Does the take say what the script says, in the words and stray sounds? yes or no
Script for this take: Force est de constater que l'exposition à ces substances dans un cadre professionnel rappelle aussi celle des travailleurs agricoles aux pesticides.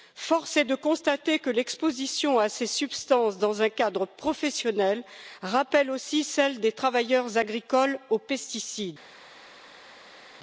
yes